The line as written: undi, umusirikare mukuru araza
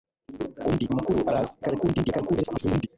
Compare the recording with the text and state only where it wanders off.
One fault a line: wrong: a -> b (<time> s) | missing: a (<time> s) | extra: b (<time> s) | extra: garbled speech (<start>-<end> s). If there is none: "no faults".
missing: umusirikare (0.8 s)
extra: garbled speech (1.6-2.9 s)